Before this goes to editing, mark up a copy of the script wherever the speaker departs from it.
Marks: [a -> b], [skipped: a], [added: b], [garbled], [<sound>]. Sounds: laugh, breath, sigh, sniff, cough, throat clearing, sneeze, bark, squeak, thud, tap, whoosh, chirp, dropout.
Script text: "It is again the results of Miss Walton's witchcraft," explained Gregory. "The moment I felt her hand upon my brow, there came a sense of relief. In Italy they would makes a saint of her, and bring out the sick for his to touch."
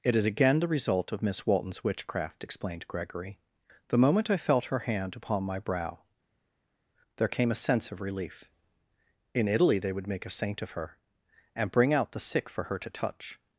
"It is again the [results -> result] of Miss Walton's witchcraft," explained Gregory. "The moment I felt her hand upon my brow, there came a sense of relief. In Italy they would [makes -> make] a saint of her, and bring out the sick for [his -> her] to touch."